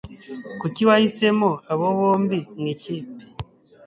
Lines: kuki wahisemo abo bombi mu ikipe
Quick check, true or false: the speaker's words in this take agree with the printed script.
true